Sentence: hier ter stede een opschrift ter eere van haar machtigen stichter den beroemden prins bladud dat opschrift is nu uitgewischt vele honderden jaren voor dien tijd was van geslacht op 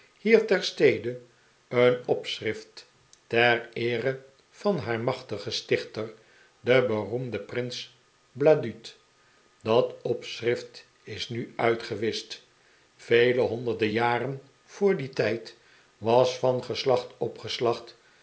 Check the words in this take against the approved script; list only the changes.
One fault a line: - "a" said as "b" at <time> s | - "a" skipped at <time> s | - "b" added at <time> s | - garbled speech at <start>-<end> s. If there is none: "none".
none